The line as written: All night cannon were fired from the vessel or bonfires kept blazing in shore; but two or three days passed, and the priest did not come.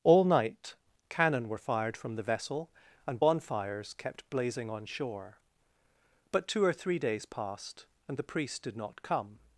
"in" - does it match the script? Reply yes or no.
no